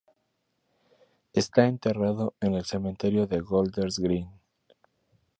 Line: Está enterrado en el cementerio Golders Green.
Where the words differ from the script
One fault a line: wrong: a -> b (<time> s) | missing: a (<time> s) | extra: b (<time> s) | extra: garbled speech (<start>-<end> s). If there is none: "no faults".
extra: de (3.3 s)